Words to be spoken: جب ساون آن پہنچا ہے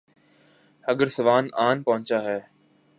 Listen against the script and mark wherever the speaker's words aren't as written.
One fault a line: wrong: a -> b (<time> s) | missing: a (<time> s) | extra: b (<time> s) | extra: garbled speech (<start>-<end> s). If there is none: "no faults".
wrong: جب -> اگر (0.9 s)